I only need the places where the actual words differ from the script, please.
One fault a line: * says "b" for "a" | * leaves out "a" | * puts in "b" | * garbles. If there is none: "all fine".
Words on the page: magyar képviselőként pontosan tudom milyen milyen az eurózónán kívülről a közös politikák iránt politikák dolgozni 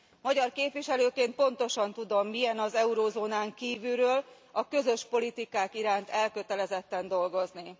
* leaves out "milyen"
* says "elkötelezetten" for "politikák"